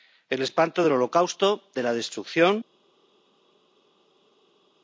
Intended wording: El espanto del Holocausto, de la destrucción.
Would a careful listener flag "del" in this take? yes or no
no